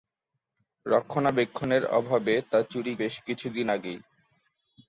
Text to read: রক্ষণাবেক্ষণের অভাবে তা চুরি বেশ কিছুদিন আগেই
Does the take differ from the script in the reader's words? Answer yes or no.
no